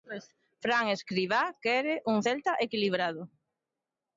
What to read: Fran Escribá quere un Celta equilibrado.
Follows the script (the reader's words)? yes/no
yes